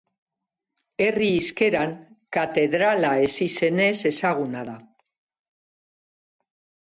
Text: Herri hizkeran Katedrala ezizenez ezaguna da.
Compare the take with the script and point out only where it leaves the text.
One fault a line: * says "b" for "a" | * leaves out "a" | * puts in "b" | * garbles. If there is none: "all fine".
all fine